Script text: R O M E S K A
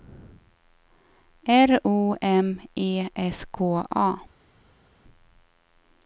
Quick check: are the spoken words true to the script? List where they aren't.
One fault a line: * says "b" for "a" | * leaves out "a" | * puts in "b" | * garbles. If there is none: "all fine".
all fine